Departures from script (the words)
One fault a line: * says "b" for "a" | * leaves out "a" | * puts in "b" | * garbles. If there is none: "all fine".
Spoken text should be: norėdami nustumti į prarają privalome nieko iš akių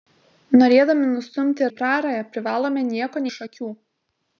all fine